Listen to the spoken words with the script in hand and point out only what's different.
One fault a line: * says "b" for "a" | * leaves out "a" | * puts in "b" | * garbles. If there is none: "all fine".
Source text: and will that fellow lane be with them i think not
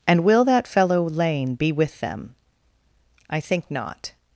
all fine